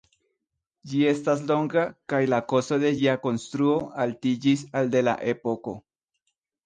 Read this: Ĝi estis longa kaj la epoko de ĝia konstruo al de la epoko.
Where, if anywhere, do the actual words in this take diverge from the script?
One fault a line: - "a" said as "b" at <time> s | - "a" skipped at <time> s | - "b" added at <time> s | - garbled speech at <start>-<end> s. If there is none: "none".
- "estis" said as "estas" at 1.1 s
- "epoko" said as "kosto" at 2.5 s
- "altiĝis" added at 4.1 s